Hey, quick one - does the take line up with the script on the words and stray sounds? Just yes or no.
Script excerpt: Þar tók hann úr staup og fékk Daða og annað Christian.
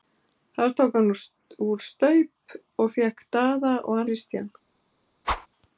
no